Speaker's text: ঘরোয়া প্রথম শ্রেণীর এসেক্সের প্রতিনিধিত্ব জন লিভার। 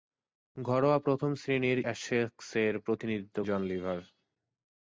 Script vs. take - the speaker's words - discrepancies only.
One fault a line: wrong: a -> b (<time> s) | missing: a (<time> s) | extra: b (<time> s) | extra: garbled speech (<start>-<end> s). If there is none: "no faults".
no faults